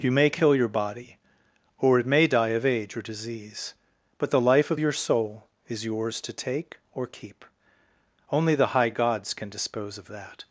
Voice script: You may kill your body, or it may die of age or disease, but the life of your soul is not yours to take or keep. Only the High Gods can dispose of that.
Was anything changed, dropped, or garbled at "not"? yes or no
yes